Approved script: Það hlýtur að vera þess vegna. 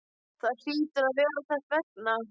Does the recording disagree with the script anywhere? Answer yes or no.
no